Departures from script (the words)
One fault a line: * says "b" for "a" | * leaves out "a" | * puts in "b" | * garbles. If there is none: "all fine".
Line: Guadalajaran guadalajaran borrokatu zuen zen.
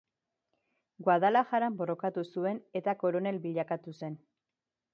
* leaves out "guadalajaran"
* puts in "eta koronel bilakatu"